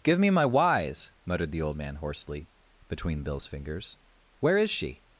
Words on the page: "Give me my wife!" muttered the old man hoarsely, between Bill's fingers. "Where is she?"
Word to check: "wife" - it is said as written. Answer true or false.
false